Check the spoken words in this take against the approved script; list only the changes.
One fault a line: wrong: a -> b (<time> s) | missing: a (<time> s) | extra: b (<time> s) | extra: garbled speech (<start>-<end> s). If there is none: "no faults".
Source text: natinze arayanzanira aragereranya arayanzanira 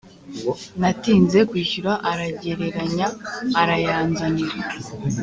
wrong: arayanzanira -> kwishyura (1.5 s)